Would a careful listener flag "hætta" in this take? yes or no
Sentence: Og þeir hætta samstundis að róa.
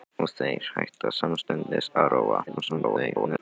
no